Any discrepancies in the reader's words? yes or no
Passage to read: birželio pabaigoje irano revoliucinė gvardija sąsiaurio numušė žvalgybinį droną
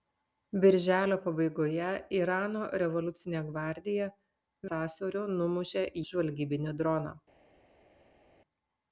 no